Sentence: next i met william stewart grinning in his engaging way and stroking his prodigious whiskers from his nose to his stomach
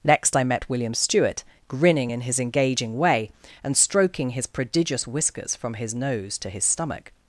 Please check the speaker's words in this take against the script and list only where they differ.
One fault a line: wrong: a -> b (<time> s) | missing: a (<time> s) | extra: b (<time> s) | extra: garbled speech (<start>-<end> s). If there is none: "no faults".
no faults